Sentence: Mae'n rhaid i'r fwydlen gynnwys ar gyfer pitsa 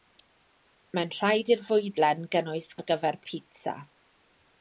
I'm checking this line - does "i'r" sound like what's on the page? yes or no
yes